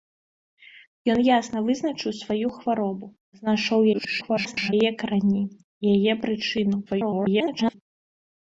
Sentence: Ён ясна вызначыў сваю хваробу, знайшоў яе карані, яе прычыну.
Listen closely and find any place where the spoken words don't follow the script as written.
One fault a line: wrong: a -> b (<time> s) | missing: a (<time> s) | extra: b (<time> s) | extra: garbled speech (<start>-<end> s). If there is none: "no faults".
extra: garbled speech (3.9-4.7 s)
extra: garbled speech (6.9-7.7 s)